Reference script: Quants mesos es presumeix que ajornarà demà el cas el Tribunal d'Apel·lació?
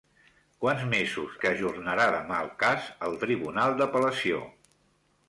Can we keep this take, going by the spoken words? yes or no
no